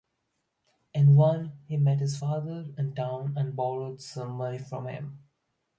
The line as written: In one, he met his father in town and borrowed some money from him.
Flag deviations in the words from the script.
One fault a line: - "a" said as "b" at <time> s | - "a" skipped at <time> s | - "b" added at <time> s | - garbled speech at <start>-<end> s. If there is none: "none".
none